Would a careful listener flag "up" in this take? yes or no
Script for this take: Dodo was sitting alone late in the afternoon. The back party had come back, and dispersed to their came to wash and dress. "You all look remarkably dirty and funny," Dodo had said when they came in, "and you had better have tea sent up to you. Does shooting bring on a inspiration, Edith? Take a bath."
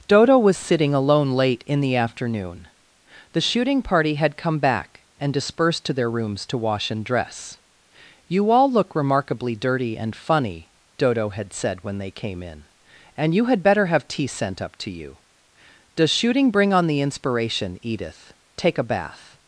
no